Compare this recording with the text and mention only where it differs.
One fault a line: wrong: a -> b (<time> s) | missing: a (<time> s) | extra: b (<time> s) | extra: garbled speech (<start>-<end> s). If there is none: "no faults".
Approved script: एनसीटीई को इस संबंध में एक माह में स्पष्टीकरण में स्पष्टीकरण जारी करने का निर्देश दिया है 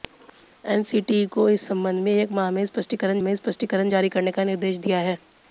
no faults